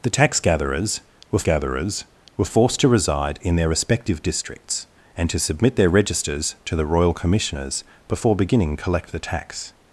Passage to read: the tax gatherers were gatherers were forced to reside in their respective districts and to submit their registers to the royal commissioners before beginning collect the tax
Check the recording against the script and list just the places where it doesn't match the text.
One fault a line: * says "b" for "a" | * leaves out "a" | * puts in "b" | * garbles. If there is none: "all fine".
all fine